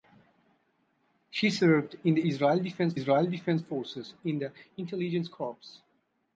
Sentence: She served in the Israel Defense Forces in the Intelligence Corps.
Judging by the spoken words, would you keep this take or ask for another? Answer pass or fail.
fail